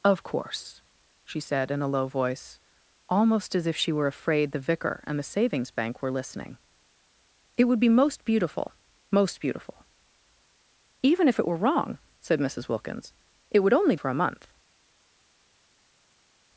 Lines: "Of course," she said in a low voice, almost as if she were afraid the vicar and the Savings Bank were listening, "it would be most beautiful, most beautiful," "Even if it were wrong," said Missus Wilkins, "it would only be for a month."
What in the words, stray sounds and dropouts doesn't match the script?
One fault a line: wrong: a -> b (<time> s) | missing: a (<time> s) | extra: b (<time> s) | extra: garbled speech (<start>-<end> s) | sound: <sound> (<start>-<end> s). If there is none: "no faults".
missing: be (13.9 s)